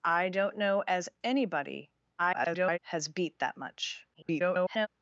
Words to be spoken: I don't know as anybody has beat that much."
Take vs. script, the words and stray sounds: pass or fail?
fail